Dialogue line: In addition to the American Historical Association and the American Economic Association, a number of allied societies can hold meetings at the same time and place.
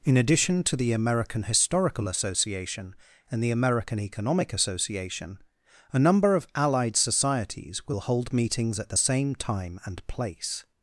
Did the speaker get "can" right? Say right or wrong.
wrong